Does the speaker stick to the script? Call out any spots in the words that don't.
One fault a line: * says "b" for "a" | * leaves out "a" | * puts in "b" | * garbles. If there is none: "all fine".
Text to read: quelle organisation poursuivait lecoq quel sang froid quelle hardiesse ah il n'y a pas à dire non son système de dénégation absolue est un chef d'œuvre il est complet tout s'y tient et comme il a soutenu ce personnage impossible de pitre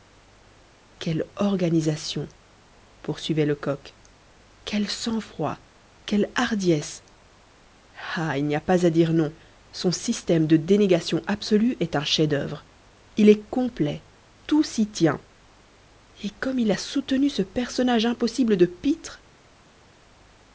all fine